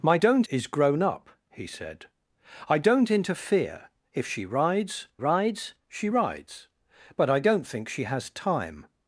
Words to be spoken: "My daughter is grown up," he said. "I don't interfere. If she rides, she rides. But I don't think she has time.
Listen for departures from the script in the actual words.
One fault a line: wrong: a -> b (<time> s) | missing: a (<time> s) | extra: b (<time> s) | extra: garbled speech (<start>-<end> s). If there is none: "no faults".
wrong: daughter -> don't (0.2 s)
extra: rides (5.2 s)